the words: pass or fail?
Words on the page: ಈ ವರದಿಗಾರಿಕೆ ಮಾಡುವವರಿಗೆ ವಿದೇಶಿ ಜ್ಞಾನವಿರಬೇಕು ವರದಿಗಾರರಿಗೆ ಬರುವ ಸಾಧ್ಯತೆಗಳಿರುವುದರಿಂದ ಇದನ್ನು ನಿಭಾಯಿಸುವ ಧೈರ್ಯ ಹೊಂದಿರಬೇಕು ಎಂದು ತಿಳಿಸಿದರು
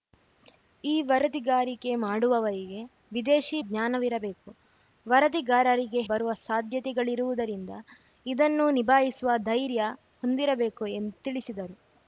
pass